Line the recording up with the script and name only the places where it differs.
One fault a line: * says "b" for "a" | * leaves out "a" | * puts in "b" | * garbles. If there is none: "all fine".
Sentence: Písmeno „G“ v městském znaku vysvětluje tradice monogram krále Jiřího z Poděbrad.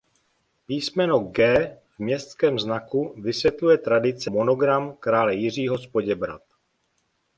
all fine